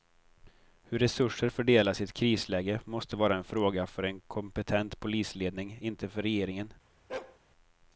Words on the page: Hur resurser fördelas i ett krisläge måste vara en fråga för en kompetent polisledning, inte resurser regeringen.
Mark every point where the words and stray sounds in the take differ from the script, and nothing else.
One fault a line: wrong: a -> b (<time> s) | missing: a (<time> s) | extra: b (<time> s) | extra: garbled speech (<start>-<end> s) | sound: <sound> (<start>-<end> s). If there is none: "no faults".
wrong: resurser -> för (6.1 s)
sound: bark (7.1-7.4 s)